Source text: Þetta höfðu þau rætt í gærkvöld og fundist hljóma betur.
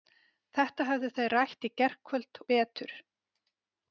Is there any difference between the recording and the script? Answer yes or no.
yes